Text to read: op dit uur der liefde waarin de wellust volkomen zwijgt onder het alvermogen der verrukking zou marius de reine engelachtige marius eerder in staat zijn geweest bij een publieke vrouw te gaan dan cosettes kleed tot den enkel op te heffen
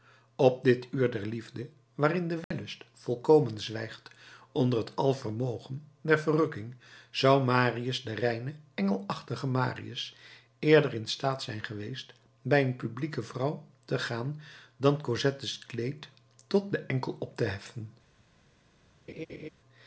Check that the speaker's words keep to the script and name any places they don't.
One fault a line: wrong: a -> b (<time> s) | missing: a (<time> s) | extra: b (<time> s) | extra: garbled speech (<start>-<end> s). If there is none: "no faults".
no faults